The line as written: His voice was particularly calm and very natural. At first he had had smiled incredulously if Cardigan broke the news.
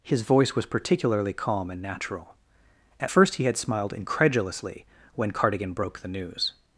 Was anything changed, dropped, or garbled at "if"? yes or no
yes